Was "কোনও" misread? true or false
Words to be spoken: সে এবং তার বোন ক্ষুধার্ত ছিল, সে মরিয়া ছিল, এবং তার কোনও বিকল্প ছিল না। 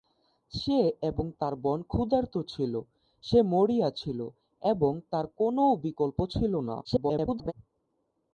false